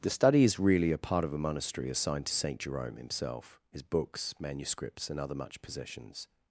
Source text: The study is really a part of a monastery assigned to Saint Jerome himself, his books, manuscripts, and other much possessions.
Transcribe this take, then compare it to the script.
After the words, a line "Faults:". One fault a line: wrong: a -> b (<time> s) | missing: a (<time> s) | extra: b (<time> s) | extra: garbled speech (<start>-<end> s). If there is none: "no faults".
The study is really a part of a monastery assigned to Saint Jerome himself, his books, manuscripts, and other much possessions.
Faults:
no faults